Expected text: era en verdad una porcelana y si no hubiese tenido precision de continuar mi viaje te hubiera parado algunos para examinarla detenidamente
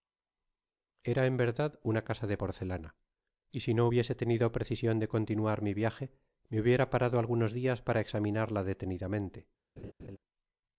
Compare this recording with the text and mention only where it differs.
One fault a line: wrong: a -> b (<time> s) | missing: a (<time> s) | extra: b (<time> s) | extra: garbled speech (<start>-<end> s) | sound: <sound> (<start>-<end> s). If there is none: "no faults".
extra: casa de (2.0 s)
wrong: te -> me (6.5 s)
extra: dias (7.5 s)
sound: laugh (9.8-10.2 s)